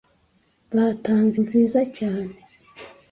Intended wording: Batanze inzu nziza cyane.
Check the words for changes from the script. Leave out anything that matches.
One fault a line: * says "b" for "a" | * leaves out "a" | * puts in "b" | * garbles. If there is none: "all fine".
* leaves out "inzu"